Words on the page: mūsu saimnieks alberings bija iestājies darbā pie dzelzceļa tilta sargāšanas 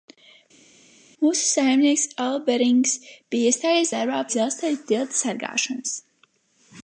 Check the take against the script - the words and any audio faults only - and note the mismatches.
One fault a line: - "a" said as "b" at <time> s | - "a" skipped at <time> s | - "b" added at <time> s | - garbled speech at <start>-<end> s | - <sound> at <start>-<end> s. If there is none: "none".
- "pie" skipped at 4.2 s